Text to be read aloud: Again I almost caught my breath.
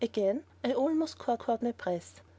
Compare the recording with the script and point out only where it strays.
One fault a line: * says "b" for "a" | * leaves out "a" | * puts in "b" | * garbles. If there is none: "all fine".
* puts in "caught"